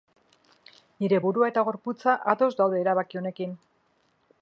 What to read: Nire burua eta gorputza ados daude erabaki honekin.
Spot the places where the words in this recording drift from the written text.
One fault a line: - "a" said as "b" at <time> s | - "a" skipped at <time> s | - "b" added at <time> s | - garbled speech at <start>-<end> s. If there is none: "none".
none